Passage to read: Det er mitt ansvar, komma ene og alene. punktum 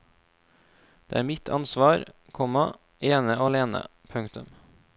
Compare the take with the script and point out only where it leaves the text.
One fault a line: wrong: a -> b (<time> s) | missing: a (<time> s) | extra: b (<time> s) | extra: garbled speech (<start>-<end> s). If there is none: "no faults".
no faults